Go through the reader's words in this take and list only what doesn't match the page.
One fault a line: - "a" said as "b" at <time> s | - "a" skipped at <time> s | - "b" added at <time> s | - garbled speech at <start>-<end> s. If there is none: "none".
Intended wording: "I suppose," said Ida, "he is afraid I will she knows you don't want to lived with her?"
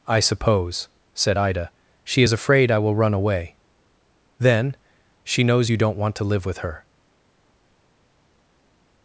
- "he" said as "she" at 2.0 s
- "run away Then" added at 2.9 s
- "lived" said as "live" at 6.2 s